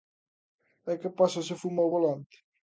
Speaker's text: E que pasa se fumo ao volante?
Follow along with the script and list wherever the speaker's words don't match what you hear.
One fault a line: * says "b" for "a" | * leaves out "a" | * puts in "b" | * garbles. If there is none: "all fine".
all fine